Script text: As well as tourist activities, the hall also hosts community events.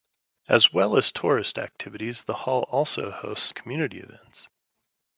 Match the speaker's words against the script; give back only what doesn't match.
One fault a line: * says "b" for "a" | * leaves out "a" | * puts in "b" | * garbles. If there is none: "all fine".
all fine